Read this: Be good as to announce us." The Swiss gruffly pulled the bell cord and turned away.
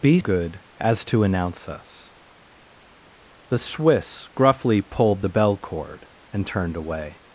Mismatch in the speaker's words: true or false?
false